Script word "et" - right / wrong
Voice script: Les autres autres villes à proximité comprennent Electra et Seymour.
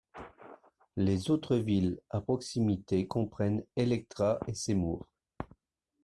right